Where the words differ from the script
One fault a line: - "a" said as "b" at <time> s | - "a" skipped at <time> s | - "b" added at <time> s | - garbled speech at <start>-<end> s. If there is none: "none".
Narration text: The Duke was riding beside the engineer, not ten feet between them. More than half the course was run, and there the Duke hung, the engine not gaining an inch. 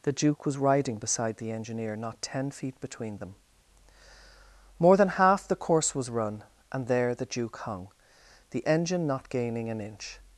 none